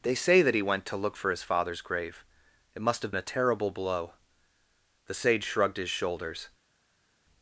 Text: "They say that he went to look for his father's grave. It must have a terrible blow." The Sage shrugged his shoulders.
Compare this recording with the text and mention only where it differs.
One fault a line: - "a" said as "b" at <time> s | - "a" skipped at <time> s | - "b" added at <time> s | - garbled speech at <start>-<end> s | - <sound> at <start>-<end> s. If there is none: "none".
none